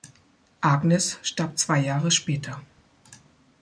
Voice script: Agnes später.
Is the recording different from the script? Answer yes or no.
yes